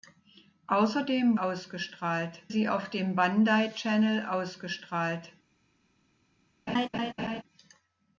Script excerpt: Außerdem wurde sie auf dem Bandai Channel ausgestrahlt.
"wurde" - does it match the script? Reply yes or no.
no